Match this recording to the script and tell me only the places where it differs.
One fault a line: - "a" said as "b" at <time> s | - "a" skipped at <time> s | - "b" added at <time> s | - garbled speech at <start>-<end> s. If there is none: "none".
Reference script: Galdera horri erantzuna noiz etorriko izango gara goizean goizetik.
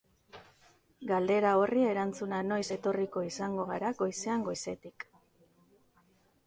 none